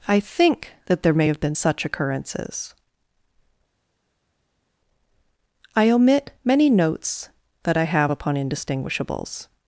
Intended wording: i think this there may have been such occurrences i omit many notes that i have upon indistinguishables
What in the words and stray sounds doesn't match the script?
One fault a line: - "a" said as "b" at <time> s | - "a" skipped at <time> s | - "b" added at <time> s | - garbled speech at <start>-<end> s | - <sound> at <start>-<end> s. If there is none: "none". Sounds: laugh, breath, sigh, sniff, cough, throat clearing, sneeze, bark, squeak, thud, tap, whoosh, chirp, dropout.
- "this" said as "that" at 0.9 s